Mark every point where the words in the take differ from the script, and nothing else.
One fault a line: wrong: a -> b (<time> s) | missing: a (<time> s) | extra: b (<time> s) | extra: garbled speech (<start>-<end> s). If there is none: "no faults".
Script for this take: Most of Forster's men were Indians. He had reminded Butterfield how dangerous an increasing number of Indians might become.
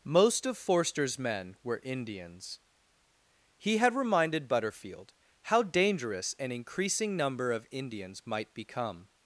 no faults